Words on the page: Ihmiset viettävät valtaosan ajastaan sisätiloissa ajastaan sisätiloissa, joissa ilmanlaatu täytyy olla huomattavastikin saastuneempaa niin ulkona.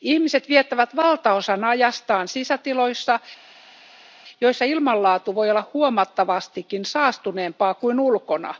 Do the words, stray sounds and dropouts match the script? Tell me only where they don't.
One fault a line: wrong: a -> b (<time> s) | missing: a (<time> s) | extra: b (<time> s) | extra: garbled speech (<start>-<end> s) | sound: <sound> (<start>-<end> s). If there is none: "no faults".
missing: ajastaan sisätiloissa (3.2 s)
wrong: täytyy -> voi (5.3 s)
wrong: niin -> kuin (7.7 s)